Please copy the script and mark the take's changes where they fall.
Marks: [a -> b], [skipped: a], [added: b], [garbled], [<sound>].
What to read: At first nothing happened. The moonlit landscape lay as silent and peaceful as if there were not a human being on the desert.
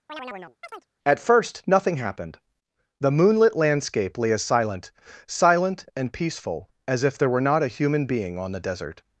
[chirp] At first nothing happened. The moonlit landscape lay as silent [added: silent] and peaceful as if there were not a human being on the desert.